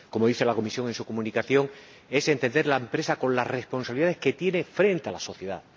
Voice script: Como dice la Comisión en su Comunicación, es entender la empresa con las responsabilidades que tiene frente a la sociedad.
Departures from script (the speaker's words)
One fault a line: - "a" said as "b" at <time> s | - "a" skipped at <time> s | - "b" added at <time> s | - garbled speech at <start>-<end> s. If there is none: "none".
none